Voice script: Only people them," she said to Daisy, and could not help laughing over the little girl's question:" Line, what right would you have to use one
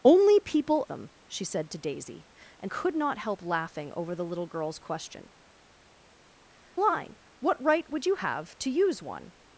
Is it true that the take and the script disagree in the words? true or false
false